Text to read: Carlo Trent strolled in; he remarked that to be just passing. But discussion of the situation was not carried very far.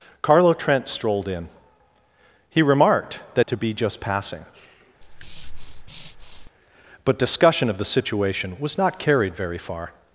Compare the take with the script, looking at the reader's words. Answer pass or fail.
pass